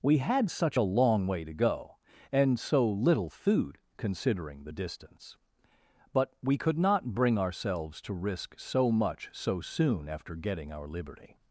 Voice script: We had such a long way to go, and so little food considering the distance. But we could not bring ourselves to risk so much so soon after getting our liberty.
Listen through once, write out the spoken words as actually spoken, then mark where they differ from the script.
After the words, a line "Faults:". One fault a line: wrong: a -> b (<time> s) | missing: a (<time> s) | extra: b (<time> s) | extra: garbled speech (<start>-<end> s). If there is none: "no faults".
We had such a long way to go, and so little food considering the distance. But we could not bring ourselves to risk so much so soon after getting our liberty.
Faults:
no faults